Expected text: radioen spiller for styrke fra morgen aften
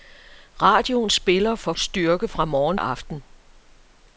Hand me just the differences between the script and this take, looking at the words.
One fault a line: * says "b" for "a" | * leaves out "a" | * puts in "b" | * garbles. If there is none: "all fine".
all fine